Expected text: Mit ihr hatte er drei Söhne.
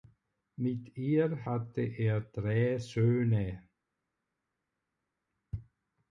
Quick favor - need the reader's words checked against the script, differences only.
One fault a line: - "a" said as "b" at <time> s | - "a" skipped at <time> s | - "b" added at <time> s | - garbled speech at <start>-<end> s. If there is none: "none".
none